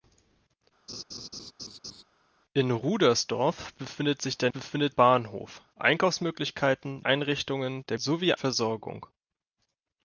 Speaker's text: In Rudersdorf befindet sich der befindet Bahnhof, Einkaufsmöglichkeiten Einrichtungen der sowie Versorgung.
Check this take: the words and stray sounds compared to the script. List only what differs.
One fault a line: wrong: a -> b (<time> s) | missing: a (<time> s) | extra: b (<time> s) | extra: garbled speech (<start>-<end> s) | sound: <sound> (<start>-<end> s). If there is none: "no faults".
sound: laugh (0.9-2.0 s)